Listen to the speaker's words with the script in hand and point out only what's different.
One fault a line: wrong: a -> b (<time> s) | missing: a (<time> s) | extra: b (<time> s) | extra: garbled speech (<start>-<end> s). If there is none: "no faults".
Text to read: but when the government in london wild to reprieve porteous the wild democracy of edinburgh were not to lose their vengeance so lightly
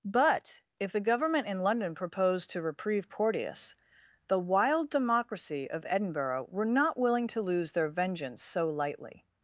wrong: when -> if (0.8 s)
wrong: wild -> proposed (1.9 s)
extra: willing (7.0 s)